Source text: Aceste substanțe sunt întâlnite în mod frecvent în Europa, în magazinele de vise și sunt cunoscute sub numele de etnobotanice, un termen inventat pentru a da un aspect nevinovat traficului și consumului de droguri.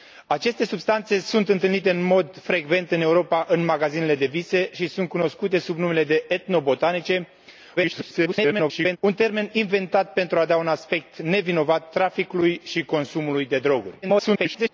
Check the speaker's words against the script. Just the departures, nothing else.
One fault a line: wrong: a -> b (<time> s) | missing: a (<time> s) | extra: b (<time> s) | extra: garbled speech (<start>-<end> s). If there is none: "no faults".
extra: garbled speech (7.8-9.0 s)
extra: garbled speech (14.0-14.7 s)